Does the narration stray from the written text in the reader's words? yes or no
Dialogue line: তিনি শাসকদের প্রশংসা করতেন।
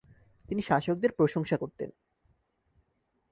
no